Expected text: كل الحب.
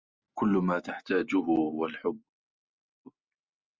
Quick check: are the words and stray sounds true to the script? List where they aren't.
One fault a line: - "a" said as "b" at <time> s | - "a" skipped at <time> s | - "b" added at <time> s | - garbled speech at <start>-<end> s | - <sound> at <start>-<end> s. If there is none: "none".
- "ما تحتاجه هو" added at 0.5 s